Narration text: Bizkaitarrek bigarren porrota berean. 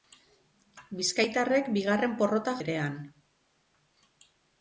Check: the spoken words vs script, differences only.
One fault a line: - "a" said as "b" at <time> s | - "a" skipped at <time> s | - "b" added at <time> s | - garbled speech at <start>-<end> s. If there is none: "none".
none